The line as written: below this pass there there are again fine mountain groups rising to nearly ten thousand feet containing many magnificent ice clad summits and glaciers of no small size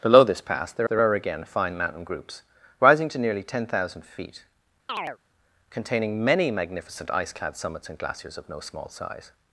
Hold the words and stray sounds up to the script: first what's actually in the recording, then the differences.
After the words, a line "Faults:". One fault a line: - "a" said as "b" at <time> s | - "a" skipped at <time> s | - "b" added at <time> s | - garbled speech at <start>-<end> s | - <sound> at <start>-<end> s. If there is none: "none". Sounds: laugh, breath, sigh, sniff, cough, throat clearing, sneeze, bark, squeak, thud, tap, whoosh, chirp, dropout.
below this pass there there are again fine mountain groups rising to nearly ten thousand feet containing many magnificent ice clad summits and glaciers of no small size
Faults:
- chirp at 4.9-5.2 s